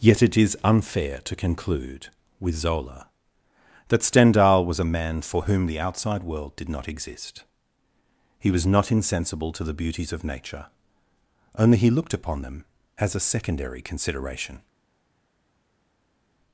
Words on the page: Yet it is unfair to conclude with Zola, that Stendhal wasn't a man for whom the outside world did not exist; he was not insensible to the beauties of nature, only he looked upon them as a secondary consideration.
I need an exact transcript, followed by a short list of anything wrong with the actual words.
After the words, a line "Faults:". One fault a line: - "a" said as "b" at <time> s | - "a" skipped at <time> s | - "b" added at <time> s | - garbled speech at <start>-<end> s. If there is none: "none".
Yet it is unfair to conclude with Zola, that Stendhal was a man for whom the outside world did not exist; he was not insensible to the beauties of nature, only he looked upon them as a secondary consideration.
Faults:
- "wasn't" said as "was" at 4.7 s